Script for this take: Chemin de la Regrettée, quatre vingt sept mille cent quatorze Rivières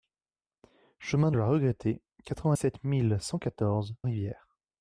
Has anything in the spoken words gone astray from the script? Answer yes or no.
no